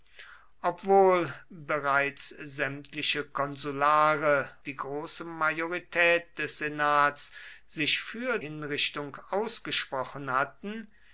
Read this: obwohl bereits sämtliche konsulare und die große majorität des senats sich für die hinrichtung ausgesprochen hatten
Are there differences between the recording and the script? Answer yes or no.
yes